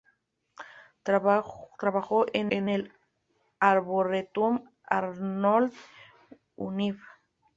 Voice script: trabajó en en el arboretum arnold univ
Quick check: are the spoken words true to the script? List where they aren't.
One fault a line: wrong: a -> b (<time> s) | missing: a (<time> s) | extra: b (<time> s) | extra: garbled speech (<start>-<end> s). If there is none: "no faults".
no faults